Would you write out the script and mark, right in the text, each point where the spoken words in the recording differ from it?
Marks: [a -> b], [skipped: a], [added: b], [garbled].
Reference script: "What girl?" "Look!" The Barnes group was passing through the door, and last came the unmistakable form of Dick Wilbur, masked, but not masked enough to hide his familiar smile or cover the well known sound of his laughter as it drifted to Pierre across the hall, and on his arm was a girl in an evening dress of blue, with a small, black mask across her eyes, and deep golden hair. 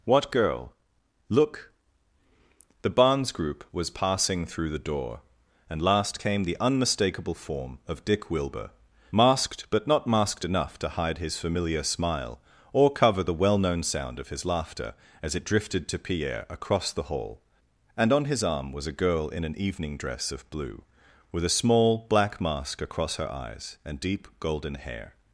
"What girl?" "Look!" The Barnes group was passing through the door, and last came the unmistakable form of Dick Wilbur, masked, but not masked enough to hide his familiar smile or cover the well known sound of his laughter as it drifted to Pierre across the hall, and on his arm was a girl in an evening dress of blue, with a small, black mask across her eyes, and deep golden hair.